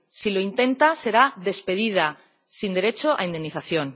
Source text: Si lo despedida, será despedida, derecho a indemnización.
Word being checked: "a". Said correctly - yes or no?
yes